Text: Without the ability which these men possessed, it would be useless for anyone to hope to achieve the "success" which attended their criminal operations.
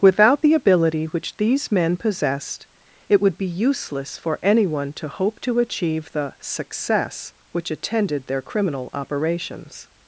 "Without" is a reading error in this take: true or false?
false